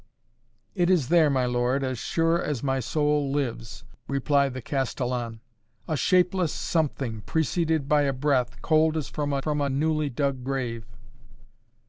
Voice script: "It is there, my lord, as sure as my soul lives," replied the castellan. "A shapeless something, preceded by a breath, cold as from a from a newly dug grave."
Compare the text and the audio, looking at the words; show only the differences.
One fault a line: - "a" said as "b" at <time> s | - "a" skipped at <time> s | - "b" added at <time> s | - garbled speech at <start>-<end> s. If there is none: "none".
none